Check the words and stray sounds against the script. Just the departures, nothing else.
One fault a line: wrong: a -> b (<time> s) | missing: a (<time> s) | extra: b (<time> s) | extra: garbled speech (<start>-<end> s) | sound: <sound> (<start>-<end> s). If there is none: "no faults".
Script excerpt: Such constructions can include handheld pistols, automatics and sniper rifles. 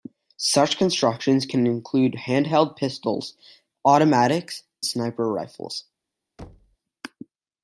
missing: and (4.6 s)
sound: thud (6.4-6.8 s)